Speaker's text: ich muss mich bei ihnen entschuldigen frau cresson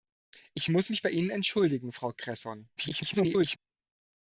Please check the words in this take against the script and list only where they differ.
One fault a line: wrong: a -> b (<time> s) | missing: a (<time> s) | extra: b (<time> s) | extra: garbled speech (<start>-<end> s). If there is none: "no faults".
extra: garbled speech (2.8-3.6 s)